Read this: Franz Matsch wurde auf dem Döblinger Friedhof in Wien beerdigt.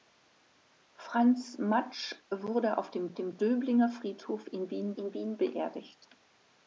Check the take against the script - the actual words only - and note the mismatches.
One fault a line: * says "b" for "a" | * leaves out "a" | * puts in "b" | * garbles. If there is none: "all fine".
* puts in "dem"
* puts in "in Wien"